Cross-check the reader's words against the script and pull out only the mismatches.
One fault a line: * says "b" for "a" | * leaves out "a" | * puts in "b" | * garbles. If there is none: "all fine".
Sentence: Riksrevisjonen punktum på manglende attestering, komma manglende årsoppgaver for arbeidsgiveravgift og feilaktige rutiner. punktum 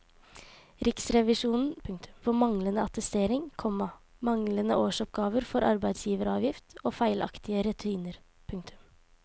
all fine